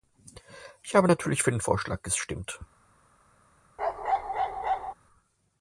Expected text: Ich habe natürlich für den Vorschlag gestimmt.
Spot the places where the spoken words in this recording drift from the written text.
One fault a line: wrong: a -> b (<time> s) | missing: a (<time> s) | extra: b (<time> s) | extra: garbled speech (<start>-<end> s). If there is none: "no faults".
no faults